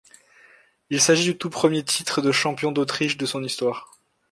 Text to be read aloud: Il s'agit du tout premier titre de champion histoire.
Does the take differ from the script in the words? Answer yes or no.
yes